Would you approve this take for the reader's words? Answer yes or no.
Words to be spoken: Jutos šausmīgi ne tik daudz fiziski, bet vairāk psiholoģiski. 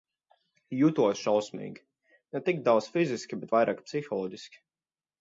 yes